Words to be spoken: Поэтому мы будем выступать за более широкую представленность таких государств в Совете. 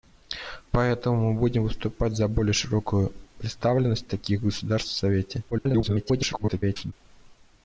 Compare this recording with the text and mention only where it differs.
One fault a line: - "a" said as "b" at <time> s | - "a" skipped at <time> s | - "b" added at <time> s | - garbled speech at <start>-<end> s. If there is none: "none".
- garbled speech at 5.5-6.9 s